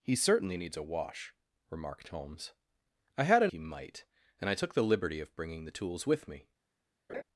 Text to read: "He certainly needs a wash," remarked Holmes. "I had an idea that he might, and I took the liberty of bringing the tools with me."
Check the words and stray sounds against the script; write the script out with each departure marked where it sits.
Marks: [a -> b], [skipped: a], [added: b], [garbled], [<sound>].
"He certainly needs a wash," remarked Holmes. "I had an [skipped: idea that] he might, and I took the liberty of bringing the tools with me." [laugh]